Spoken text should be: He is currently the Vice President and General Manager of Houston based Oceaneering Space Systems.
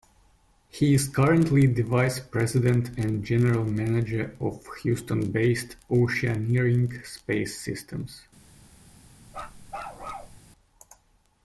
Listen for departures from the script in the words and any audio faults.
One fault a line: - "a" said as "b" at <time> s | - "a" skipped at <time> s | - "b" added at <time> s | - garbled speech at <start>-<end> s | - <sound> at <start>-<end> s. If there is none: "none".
- bark at 9.3-10.4 s